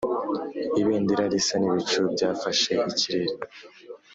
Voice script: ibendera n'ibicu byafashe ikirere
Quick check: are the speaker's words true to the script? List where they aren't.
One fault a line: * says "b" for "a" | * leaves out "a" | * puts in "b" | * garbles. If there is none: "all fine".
* puts in "risa"